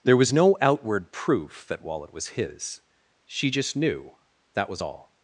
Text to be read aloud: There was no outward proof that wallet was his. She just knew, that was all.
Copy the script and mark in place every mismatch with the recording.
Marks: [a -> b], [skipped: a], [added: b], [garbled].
There was no outward proof that wallet was his. She just knew, that was all.